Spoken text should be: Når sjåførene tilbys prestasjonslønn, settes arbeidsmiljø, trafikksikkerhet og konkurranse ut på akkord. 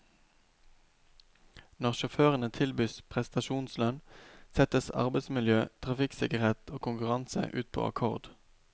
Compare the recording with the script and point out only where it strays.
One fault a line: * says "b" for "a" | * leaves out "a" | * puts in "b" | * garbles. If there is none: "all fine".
all fine